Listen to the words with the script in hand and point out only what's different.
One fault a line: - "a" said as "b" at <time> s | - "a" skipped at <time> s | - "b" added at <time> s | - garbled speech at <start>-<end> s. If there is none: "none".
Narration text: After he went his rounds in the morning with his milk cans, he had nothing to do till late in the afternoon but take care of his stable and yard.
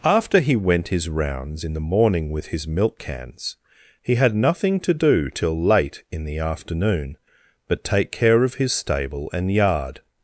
none